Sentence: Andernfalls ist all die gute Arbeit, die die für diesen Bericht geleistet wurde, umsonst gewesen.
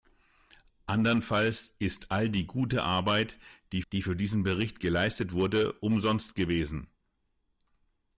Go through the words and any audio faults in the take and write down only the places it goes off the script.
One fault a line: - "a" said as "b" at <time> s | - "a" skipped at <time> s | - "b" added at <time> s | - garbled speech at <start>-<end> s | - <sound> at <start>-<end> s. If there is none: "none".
none